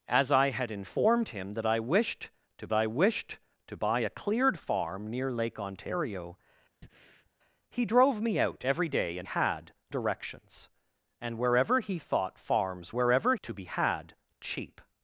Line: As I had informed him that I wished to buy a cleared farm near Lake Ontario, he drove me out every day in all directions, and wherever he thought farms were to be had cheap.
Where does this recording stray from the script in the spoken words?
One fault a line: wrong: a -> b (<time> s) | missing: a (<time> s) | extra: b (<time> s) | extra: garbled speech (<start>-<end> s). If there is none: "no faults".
extra: I wished to (2.7 s)
wrong: all -> had (9.2 s)
wrong: were -> wherever (12.9 s)